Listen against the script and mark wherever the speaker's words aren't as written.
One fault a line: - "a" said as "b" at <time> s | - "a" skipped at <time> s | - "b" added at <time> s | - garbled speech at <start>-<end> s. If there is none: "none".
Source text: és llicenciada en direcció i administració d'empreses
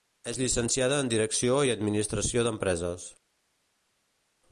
none